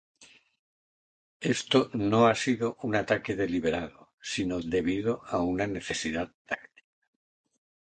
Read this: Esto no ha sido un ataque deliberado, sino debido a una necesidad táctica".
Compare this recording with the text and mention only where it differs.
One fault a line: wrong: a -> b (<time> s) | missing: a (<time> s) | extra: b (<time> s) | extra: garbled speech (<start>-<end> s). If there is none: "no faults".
no faults